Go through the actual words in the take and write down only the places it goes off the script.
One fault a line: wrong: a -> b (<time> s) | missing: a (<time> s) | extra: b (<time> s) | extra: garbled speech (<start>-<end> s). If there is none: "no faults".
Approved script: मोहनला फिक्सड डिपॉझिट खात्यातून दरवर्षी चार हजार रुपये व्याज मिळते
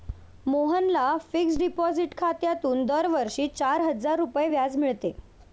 no faults